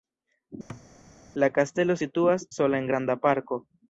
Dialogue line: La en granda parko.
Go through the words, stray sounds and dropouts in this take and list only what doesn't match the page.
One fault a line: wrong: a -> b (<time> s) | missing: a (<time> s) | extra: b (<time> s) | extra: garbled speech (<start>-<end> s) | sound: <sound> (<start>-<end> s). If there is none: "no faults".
sound: thud (0.7-0.9 s)
extra: kastelo situas sola (1.6 s)